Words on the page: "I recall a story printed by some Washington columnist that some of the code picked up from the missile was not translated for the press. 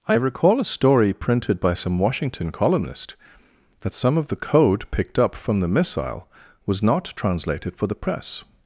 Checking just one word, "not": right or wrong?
right